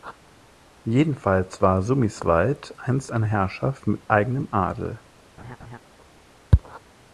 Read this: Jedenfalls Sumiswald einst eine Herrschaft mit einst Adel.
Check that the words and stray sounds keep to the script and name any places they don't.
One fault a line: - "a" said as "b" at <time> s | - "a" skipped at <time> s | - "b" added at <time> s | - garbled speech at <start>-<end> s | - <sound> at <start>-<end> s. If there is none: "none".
- "war" added at 1.6 s
- "einst" said as "eigenem" at 4.1 s
- laugh at 5.4-5.8 s